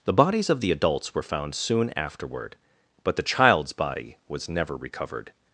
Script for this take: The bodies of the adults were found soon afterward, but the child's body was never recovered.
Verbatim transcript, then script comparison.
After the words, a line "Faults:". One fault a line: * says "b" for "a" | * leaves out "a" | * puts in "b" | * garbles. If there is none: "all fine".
The bodies of the adults were found soon afterward, but the child's body was never recovered.
Faults:
all fine